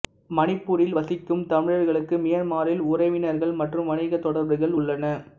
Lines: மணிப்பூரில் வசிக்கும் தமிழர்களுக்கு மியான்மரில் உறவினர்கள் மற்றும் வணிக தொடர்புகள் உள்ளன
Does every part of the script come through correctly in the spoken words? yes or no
yes